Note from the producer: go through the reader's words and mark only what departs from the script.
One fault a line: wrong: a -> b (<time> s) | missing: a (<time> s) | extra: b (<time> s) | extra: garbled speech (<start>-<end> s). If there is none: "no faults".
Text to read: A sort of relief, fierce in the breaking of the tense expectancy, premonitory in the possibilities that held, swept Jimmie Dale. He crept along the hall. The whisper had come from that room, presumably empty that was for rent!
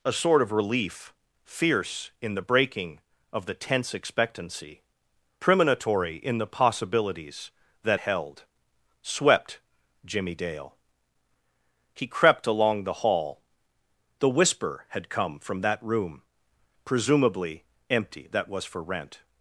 no faults